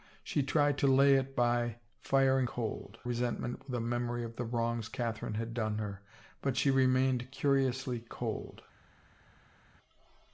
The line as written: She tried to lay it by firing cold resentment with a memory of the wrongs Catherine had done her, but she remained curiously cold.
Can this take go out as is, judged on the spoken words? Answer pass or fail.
pass